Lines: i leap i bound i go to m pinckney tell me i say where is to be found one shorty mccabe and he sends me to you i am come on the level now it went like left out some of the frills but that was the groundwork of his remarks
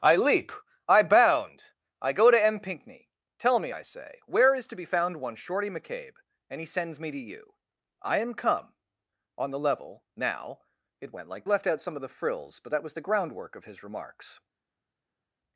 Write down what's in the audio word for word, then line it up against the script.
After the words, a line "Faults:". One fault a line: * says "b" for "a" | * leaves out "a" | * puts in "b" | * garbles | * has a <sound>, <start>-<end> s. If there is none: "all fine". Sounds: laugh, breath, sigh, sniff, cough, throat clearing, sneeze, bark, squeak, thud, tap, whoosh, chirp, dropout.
i leap i bound i go to m pinckney tell me i say where is to be found one shorty mccabe and he sends me to you i am come on the level now it went like left out some of the frills but that was the groundwork of his remarks
Faults:
all fine